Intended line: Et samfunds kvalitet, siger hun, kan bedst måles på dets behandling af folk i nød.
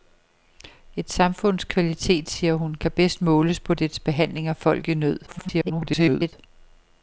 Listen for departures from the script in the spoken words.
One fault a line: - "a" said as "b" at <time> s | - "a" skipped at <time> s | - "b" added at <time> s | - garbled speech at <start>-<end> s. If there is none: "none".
- garbled speech at 5.3-6.3 s